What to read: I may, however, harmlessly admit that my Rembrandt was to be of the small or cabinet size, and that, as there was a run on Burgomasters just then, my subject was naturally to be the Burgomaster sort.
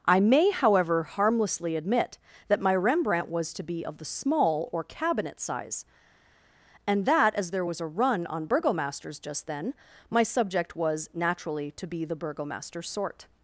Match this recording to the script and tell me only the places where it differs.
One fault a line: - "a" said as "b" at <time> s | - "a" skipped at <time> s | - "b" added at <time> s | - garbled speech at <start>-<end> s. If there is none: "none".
none